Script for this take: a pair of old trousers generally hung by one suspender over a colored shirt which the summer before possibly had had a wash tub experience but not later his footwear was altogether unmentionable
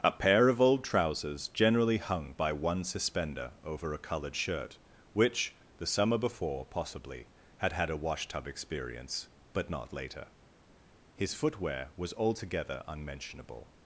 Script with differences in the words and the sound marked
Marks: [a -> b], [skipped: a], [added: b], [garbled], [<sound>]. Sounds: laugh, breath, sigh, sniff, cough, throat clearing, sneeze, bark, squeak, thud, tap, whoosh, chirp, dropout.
a pair of old trousers generally hung by one suspender over a colored shirt which the summer before possibly had had a wash tub experience but not later his footwear was altogether unmentionable